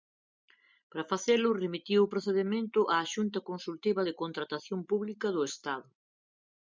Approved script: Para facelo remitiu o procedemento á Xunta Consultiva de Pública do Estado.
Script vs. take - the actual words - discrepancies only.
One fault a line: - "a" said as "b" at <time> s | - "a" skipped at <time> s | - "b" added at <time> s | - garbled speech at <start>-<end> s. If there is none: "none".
- "Contratación" added at 4.2 s